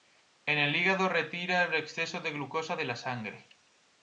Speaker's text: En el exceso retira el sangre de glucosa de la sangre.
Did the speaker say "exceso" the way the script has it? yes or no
no